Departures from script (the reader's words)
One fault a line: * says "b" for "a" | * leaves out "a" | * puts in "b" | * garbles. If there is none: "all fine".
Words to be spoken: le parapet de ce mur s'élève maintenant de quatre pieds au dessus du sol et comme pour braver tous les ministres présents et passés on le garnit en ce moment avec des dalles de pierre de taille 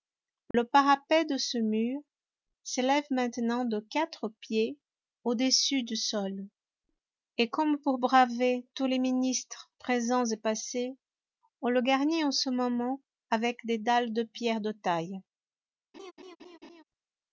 all fine